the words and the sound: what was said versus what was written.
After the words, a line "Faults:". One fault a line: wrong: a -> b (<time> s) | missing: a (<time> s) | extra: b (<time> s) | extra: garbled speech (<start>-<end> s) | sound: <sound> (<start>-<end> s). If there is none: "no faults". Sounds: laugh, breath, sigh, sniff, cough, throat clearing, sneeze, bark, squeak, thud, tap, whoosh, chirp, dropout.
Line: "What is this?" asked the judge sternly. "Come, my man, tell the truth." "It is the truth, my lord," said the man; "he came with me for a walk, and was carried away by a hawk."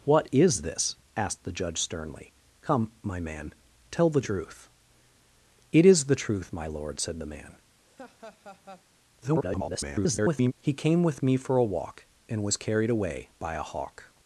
"What is this?" asked the judge sternly. "Come, my man, tell the truth." "It is the truth, my lord," said the man; [garbled] "he came with me for a walk, and was carried away by a hawk."
Faults:
sound: laugh (7.9-8.9 s)
extra: garbled speech (9.2-10.5 s)